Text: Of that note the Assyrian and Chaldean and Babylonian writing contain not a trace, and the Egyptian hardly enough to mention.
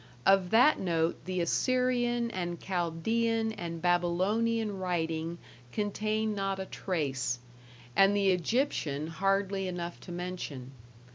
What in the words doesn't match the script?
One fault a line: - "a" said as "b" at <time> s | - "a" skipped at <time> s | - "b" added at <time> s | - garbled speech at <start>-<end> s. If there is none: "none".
none